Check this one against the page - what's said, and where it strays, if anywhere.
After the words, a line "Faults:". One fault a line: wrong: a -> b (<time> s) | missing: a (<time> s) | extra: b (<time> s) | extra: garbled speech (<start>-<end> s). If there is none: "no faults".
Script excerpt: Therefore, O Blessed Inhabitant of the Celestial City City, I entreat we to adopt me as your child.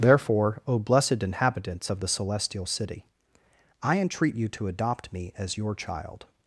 Therefore, O Blessed Inhabitants of the Celestial City, I entreat you to adopt me as your child.
Faults:
wrong: Inhabitant -> Inhabitants (1.2 s)
missing: City (3.0 s)
wrong: we -> you (4.3 s)